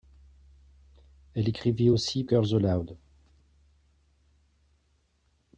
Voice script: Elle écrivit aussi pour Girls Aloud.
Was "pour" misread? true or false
true